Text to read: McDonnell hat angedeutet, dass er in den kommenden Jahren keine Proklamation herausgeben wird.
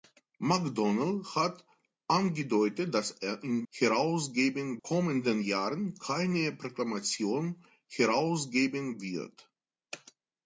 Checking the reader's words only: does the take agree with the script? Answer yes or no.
no